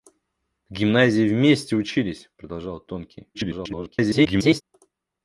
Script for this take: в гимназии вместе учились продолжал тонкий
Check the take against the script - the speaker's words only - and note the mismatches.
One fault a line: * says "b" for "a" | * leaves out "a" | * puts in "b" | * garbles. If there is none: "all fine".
* garbles